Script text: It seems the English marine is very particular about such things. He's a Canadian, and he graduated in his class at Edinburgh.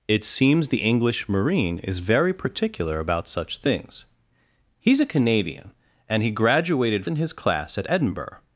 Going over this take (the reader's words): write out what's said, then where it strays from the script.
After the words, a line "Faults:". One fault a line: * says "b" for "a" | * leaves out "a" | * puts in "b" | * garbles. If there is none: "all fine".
It seems the English marine is very particular about such things. He's a Canadian, and he graduated in his class at Edinburgh.
Faults:
all fine